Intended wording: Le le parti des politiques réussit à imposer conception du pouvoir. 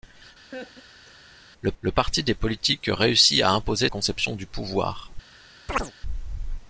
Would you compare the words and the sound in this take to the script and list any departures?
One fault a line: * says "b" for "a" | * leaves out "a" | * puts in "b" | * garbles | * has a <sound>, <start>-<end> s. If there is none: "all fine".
* has a laugh, 0.5-1.2 s
* has a chirp, 5.7-5.9 s